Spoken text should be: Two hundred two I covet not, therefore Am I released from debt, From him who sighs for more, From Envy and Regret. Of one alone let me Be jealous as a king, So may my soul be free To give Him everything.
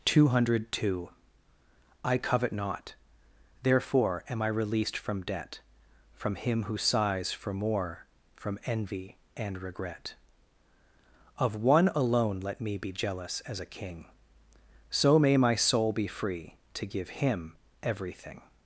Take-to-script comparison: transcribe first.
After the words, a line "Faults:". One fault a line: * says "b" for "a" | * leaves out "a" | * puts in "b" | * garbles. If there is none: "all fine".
Two hundred two I covet not, therefore Am I released from debt, From him who sighs for more, From Envy and Regret. Of one alone let me Be jealous as a king, So may my soul be free To give Him everything.
Faults:
all fine